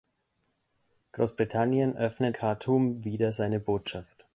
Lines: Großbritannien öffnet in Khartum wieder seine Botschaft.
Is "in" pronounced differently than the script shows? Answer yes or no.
yes